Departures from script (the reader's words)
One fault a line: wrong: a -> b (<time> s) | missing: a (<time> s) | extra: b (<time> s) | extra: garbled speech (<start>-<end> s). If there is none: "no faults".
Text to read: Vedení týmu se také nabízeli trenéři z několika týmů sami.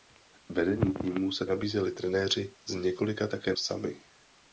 missing: také (1.4 s)
wrong: týmů -> také (3.3 s)